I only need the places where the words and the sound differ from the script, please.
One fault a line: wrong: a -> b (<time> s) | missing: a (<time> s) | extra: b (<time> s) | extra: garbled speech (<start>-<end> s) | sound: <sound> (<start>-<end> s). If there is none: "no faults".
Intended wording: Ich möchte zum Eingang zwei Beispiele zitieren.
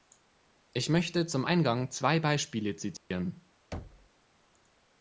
sound: dropout (3.0-3.1 s)
sound: thud (3.7-4.1 s)